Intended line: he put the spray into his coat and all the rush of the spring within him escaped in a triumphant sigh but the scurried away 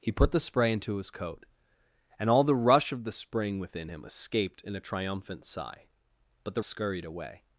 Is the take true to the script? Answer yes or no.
yes